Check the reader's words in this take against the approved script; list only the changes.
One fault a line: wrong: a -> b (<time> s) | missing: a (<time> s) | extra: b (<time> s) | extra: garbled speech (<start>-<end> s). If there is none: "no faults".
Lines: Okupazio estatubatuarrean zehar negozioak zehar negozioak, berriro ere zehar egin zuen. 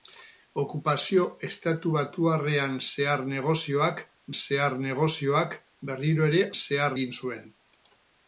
no faults